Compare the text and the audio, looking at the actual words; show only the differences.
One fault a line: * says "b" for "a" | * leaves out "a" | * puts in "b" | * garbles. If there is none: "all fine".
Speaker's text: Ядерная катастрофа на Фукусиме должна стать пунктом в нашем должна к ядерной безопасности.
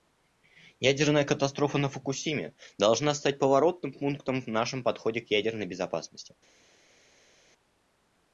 * puts in "поворотным"
* says "подходе" for "должна"